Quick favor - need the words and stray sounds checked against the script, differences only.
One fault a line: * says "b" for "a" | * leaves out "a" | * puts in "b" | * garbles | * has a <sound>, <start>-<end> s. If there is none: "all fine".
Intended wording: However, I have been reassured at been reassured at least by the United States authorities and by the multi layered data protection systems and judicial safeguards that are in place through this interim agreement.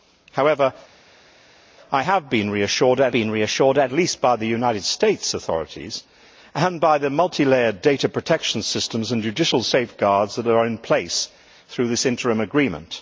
all fine